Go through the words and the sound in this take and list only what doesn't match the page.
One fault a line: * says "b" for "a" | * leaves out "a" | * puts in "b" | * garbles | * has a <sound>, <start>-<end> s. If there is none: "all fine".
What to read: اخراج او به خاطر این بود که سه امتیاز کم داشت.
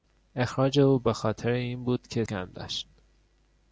* leaves out "سه امتیاز"